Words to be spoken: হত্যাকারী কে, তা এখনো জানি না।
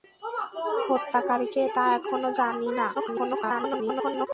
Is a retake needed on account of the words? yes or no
yes